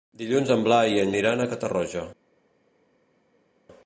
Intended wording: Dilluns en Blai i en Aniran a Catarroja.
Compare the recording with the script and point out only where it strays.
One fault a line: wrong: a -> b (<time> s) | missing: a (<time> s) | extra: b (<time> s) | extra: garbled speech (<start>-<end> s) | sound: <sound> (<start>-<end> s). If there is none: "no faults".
no faults